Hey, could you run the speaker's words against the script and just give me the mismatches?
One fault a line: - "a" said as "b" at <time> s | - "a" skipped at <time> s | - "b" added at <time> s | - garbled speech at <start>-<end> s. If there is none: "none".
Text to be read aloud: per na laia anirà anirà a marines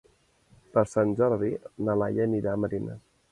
- "sant jordi" added at 0.9 s
- "anirà" skipped at 2.5 s